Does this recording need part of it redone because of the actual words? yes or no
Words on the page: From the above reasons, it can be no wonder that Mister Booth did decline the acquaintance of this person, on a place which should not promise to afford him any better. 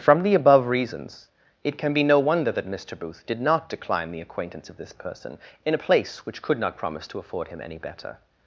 yes